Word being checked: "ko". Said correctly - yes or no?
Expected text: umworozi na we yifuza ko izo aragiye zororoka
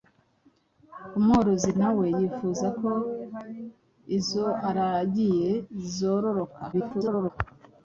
yes